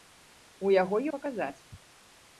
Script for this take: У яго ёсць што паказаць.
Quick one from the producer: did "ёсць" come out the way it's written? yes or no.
no